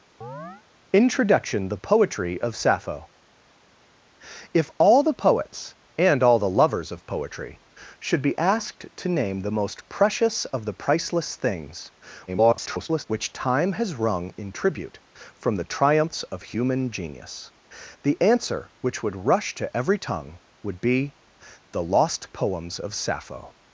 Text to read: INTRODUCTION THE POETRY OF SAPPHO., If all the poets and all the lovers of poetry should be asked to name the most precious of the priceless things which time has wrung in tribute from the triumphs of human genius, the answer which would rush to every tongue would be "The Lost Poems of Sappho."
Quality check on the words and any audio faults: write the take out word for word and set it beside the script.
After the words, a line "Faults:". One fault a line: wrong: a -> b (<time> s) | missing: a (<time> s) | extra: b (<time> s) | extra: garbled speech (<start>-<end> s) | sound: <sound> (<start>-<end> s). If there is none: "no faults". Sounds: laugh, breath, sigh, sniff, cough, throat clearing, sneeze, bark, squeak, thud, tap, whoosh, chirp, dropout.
INTRODUCTION THE POETRY OF SAPPHO., If all the poets and all the lovers of poetry should be asked to name the most precious of the priceless things [garbled] which time has wrung in tribute from the triumphs of human genius, the answer which would rush to every tongue would be "The Lost Poems of Sappho."
Faults:
sound: chirp (0.2-0.6 s)
extra: garbled speech (12.3-13.0 s)